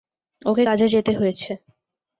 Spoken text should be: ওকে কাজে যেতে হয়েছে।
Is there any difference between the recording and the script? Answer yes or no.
no